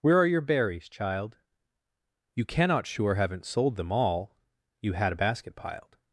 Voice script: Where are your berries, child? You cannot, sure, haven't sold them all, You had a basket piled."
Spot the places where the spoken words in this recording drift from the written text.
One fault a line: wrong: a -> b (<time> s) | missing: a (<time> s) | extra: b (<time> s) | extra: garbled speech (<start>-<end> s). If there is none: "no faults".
no faults